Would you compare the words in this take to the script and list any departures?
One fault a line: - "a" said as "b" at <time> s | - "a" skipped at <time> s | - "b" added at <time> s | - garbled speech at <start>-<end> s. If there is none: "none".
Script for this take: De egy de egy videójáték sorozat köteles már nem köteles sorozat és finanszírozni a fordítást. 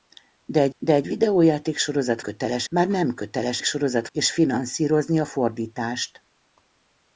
none